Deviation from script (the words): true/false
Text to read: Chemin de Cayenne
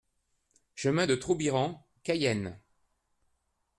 true